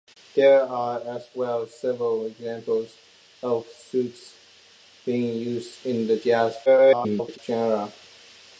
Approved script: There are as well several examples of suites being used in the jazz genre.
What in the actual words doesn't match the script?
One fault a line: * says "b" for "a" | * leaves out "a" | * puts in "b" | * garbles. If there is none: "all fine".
* garbles